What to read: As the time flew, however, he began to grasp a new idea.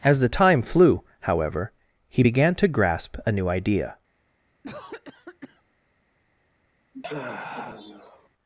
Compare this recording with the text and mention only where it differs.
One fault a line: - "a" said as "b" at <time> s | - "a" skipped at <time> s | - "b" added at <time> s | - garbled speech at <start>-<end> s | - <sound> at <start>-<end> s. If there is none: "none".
- cough at 4.6-5.6 s
- sigh at 6.9-8.3 s